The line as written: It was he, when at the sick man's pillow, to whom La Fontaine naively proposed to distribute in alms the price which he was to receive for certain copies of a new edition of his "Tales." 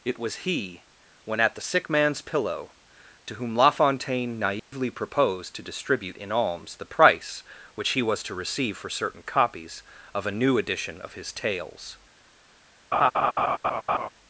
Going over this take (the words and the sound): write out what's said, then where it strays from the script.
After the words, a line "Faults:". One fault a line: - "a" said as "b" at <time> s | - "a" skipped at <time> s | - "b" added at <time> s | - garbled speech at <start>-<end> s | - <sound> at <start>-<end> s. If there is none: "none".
It was he, when at the sick man's pillow, to whom La Fontaine naively proposed to distribute in alms the price which he was to receive for certain copies of a new edition of his "Tales."
Faults:
- dropout at 4.6-4.7 s
- laugh at 12.9-14.1 s